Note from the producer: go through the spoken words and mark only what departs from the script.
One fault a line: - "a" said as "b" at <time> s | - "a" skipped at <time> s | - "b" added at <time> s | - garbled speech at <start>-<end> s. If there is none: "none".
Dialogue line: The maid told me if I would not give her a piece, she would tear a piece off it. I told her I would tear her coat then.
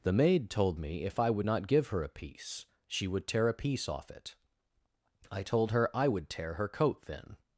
none